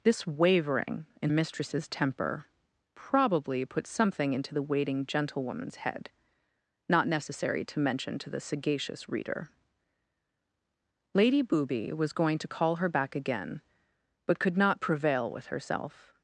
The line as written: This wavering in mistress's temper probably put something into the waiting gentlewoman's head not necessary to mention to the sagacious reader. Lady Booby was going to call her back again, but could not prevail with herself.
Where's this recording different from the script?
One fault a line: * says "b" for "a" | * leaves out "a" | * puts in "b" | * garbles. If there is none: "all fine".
all fine